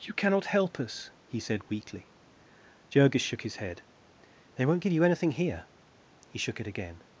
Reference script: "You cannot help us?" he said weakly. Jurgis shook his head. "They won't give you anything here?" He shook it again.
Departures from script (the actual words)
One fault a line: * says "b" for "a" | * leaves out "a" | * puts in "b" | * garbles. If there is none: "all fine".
all fine